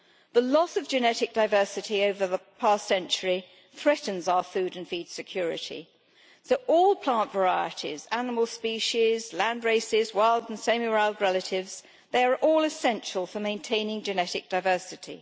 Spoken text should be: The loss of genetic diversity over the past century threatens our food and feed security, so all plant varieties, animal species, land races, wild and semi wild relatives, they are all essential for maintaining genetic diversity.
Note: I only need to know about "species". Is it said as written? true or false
true